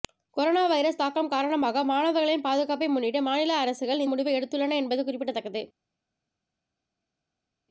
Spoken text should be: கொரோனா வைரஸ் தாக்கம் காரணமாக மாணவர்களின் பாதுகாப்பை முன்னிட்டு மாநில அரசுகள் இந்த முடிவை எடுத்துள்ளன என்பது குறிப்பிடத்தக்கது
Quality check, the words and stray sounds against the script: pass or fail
fail